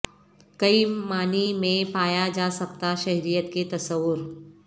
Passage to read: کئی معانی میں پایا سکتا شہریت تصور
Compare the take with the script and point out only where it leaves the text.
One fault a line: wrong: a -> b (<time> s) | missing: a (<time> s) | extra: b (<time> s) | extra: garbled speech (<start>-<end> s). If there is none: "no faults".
extra: جا (2.3 s)
extra: کے (3.5 s)